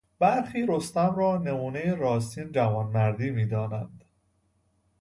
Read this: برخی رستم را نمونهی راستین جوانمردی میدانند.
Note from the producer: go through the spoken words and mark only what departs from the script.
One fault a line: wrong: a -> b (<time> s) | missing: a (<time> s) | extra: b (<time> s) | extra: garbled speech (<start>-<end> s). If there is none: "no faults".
no faults